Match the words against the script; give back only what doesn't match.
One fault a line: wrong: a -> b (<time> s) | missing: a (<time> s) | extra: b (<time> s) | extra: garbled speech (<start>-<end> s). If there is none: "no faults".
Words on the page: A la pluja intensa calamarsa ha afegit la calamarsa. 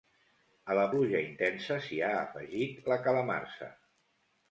wrong: calamarsa -> s'hi (1.8 s)